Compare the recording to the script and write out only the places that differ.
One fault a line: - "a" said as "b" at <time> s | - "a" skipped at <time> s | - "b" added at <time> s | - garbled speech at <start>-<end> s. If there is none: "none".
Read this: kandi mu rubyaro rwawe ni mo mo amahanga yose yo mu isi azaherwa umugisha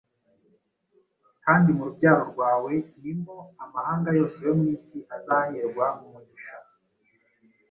- "mo" skipped at 3.4 s